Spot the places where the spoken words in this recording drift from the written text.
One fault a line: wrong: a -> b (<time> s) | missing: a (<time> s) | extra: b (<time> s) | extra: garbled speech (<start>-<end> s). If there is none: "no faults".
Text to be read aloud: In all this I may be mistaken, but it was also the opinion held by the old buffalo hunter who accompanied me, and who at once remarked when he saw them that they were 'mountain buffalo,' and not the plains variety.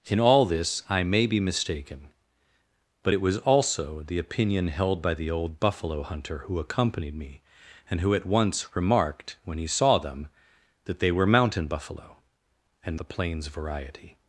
missing: not (13.0 s)